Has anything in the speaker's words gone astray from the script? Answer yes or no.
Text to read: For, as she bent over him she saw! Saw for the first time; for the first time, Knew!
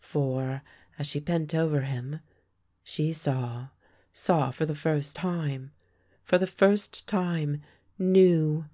no